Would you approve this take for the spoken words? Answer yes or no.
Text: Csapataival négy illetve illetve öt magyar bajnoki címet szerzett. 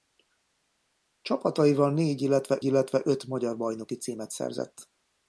yes